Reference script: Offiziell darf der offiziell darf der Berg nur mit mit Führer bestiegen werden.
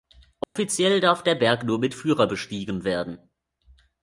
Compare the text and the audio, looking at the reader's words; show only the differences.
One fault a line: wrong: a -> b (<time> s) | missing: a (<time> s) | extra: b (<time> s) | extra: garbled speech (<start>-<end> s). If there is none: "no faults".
missing: offiziell darf der (1.4 s)
missing: mit (1.9 s)